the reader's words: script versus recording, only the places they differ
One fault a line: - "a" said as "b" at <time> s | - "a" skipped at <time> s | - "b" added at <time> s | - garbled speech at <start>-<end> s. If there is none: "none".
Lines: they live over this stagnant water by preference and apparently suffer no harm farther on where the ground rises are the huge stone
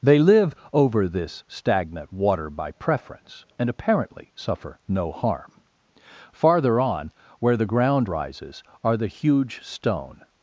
none